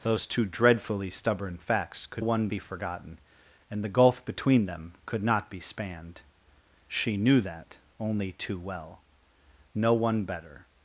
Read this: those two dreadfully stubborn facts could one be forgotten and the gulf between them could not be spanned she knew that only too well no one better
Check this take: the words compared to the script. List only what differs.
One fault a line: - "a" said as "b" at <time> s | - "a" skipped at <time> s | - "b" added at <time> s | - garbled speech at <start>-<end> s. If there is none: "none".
none